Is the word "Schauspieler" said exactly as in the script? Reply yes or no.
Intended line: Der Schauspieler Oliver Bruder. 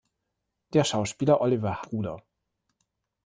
yes